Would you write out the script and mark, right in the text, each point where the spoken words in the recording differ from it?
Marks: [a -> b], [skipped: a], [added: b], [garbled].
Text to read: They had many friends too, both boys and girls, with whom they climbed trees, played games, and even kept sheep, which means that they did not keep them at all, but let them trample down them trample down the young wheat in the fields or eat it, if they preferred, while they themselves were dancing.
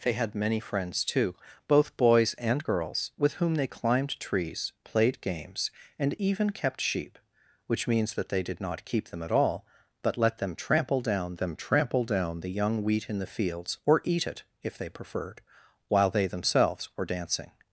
They had many friends too, both boys and girls, with whom they climbed trees, played games, and even kept sheep, which means that they did not keep them at all, but let them trample down them trample down the young wheat in the fields or eat it, if they preferred, while they themselves were dancing.